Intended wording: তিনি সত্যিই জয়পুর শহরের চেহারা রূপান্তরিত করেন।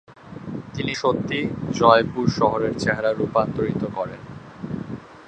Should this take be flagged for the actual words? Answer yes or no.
no